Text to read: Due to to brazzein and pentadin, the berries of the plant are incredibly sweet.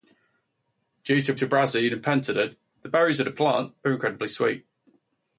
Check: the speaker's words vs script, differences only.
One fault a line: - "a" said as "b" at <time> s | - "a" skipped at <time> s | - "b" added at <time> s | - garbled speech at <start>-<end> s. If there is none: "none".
none